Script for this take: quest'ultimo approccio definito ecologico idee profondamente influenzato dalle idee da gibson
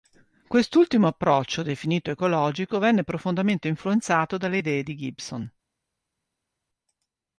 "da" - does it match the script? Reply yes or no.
no